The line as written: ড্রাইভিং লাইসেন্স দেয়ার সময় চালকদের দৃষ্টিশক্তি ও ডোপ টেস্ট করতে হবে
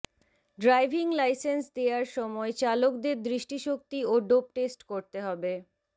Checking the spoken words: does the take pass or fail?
pass